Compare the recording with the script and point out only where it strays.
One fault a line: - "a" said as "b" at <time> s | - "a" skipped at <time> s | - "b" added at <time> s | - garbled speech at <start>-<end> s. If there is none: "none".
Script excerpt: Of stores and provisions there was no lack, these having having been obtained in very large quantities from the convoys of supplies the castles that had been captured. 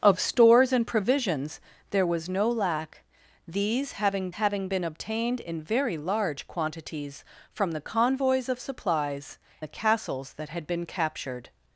none